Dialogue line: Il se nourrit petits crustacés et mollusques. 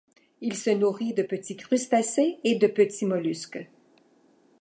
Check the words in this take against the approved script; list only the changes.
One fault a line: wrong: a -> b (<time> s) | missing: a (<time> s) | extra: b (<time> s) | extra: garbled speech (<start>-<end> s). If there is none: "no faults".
extra: de (1.1 s)
extra: de petits (2.6 s)